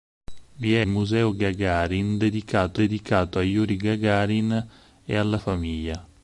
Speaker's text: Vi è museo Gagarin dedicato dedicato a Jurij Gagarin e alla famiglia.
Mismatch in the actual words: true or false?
false